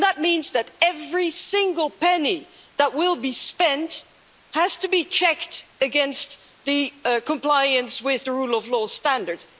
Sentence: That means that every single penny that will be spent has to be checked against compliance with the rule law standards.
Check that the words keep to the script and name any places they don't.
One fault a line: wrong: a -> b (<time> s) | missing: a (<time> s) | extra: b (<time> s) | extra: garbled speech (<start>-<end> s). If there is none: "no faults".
extra: of (8.5 s)